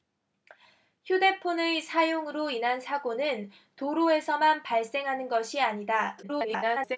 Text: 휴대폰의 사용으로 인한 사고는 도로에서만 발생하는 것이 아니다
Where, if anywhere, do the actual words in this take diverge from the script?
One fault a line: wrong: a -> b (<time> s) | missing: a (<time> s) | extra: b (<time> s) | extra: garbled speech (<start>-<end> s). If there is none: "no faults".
extra: garbled speech (6.2-7.0 s)